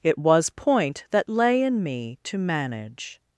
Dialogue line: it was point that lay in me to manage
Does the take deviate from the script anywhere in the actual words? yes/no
no